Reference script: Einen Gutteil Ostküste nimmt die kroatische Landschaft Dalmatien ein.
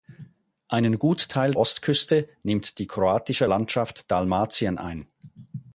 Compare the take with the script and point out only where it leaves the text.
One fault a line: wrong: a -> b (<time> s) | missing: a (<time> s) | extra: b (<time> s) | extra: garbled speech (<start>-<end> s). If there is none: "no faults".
no faults